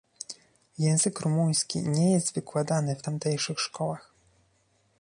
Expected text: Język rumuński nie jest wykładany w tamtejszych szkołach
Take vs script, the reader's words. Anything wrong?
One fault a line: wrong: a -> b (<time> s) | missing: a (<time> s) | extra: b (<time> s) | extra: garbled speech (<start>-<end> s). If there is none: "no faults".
no faults